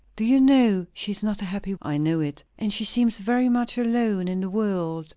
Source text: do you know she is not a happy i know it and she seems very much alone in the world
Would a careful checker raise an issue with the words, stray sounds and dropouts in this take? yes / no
no